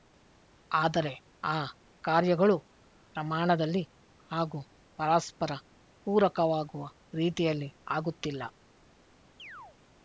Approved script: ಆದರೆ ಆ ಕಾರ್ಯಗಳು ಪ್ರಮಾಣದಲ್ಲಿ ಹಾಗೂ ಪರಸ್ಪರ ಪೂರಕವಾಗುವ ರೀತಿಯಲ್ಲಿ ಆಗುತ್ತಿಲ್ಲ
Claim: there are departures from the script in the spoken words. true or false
false